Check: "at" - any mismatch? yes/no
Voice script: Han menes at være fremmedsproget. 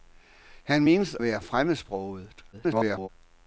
yes